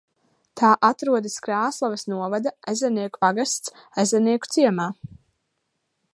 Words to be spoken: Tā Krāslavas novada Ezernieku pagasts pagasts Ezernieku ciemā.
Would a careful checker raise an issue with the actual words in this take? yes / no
yes